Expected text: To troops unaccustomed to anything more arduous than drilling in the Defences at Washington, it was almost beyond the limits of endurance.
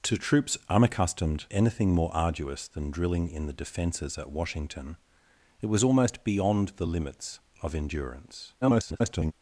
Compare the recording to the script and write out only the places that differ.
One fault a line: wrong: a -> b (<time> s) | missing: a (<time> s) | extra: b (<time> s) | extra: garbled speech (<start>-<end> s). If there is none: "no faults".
missing: to (1.4 s)
extra: garbled speech (8.6-9.3 s)